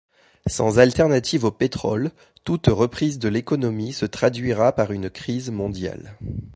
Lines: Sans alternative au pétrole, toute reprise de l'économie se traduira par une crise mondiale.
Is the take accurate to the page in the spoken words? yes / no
yes